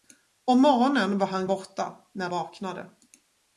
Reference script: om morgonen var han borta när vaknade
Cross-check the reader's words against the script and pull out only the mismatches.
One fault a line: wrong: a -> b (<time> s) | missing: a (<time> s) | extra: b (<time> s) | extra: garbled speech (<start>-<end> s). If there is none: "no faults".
no faults